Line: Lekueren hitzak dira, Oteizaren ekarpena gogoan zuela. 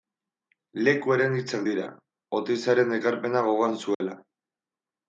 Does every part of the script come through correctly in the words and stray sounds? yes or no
no